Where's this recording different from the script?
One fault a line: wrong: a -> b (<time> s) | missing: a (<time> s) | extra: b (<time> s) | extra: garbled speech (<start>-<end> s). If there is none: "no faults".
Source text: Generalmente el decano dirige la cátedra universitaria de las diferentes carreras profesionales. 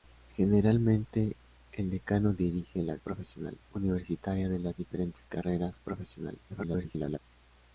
wrong: cátedra -> profesionales (3.0 s)
extra: garbled speech (6.5-7.2 s)